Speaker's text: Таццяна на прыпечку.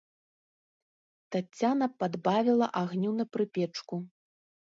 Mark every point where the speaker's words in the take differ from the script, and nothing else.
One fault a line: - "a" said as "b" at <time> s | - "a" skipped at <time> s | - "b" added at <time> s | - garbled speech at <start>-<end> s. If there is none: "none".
- "падбавіла агню" added at 2.0 s